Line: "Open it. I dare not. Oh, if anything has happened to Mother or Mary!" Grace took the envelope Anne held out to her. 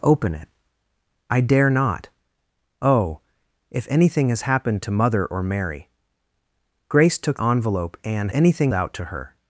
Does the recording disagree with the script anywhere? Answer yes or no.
yes